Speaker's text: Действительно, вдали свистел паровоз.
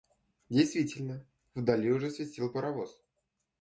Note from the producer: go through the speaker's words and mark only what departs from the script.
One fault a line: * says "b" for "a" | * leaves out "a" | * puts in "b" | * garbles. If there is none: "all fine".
* puts in "уже"